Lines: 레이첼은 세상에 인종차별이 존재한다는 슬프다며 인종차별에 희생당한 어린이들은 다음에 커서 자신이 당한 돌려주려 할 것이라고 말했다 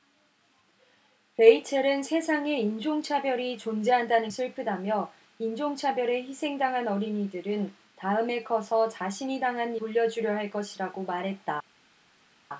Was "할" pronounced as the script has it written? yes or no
yes